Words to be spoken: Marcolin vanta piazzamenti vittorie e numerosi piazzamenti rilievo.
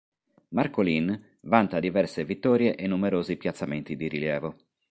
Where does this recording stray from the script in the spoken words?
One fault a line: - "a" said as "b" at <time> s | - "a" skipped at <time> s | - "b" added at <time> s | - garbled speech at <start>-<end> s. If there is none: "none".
- "piazzamenti" said as "diverse" at 1.8 s
- "di" added at 4.0 s